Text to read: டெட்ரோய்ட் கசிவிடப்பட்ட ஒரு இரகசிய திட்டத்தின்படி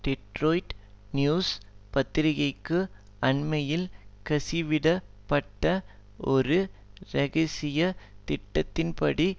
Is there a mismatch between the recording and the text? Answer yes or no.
yes